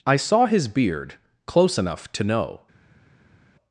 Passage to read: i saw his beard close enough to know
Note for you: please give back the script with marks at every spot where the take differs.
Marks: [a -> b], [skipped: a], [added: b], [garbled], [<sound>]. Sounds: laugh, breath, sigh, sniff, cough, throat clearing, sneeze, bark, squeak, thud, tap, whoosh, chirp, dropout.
i saw his beard close enough to know